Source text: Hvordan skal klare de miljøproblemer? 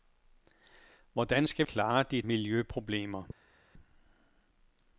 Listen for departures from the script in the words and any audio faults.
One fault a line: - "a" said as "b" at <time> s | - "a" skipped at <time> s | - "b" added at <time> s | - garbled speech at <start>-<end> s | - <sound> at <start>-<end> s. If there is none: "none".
none